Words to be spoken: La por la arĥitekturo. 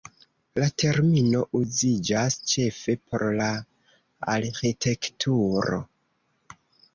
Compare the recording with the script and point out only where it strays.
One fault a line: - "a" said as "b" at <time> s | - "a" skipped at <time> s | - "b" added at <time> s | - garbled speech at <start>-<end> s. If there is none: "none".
- "termino uziĝas ĉefe" added at 0.8 s